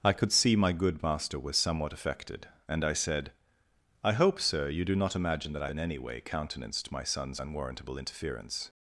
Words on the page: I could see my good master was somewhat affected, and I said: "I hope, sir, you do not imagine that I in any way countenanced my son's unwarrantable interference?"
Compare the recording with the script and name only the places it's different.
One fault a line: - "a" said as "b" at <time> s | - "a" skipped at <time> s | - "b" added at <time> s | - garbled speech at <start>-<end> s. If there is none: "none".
none